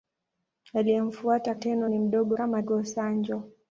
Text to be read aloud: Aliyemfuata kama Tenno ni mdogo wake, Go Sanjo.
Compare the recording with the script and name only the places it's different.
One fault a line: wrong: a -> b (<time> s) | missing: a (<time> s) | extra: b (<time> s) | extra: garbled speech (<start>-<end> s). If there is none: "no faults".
missing: kama (1.6 s)
wrong: wake -> kama (2.3 s)